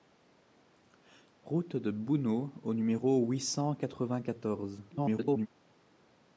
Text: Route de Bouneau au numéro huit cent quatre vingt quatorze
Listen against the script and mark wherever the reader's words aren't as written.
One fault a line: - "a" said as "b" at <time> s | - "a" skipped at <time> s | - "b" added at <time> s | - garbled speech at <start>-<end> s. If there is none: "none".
- garbled speech at 4.9-5.5 s